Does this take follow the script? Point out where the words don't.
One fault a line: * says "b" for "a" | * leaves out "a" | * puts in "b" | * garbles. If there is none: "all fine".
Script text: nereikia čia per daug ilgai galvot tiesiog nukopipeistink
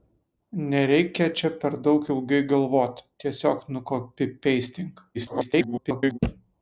* garbles